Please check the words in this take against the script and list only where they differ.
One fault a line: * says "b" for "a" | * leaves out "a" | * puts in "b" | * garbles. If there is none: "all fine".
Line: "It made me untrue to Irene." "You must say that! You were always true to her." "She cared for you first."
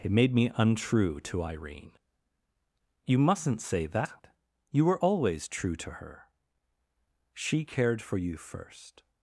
* says "mustn't" for "must"